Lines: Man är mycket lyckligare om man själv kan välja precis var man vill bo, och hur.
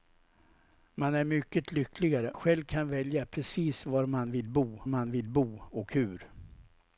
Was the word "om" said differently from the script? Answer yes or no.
yes